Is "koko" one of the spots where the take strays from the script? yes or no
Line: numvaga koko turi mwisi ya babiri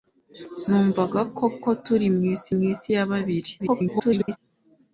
no